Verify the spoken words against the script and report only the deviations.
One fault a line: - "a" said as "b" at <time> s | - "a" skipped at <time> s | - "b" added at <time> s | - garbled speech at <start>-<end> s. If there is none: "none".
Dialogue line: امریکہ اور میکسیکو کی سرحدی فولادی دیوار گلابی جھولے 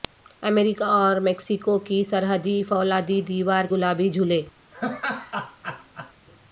none